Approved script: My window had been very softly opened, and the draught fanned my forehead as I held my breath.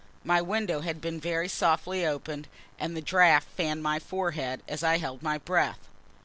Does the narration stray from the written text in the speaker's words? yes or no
no